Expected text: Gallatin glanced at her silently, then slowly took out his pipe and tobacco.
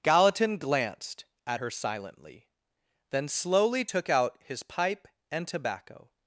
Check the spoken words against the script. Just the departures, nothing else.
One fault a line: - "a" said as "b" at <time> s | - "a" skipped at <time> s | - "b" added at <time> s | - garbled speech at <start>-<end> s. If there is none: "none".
none